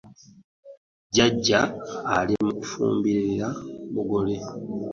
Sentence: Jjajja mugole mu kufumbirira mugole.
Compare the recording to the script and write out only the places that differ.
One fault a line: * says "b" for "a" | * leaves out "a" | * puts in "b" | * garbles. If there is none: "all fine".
* says "ali" for "mugole"